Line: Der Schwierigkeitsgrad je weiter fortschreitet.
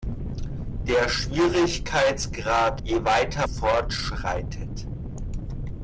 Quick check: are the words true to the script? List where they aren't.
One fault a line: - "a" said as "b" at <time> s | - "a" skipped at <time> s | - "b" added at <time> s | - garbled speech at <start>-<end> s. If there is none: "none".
none